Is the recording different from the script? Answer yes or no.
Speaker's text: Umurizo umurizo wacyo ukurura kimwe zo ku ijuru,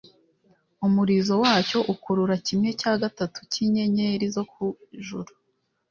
yes